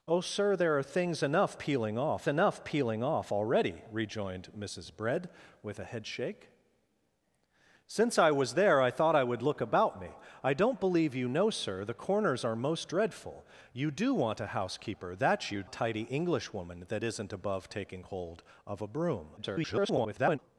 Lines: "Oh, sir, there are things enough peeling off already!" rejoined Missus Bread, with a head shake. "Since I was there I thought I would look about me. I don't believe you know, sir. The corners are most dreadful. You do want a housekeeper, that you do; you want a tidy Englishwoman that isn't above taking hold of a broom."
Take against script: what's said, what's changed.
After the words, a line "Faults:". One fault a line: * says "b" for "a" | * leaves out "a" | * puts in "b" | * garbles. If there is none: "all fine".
"Oh, sir, there are things enough peeling off enough peeling off already!" rejoined Missus Bread, with a head shake. "Since I was there I thought I would look about me. I don't believe you know, sir. The corners are most dreadful. You do want a housekeeper, that you a tidy Englishwoman that isn't above taking hold of a broom." [garbled]
Faults:
* puts in "enough peeling off"
* leaves out "do you want"
* garbles